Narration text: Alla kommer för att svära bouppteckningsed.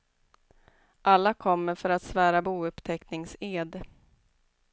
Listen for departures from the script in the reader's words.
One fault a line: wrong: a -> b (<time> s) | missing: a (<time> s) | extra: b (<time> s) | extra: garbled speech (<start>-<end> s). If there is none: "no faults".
no faults